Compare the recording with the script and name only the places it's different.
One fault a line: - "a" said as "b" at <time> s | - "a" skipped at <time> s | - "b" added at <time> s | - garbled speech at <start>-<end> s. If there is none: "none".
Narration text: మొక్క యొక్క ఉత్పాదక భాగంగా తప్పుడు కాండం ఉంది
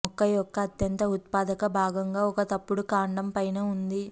- "అత్యంత" added at 0.6 s
- "ఒక" added at 2.2 s
- "పైన" added at 3.3 s